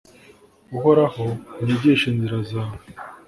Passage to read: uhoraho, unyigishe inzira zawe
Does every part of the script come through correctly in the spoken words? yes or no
yes